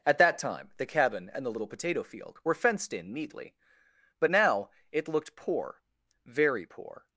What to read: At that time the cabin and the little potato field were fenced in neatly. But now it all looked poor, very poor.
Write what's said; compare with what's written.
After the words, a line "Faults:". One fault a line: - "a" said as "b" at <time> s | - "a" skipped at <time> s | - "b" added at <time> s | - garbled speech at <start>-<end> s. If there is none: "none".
At that time the cabin and the little potato field were fenced in neatly. But now it looked poor, very poor.
Faults:
- "all" skipped at 5.1 s